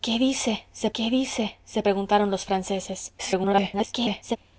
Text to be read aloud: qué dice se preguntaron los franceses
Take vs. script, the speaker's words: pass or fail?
fail